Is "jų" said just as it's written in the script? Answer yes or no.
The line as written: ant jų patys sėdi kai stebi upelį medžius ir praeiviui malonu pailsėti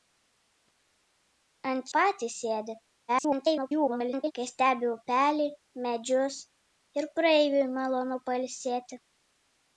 no